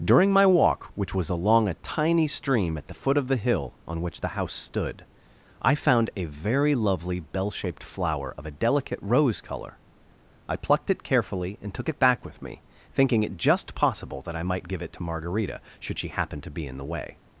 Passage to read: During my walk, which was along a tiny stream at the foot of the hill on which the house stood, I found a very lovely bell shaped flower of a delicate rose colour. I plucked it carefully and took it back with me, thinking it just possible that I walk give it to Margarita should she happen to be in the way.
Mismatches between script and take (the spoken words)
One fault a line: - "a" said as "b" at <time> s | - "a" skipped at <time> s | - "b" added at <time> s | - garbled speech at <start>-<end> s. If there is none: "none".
- "walk" said as "might" at 14.4 s